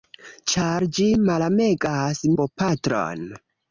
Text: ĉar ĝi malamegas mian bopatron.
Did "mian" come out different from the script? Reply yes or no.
yes